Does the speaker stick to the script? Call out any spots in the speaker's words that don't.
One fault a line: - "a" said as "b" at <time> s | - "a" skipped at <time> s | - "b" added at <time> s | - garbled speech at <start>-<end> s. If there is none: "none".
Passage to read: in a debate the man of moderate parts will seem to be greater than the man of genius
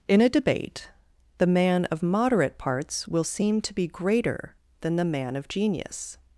none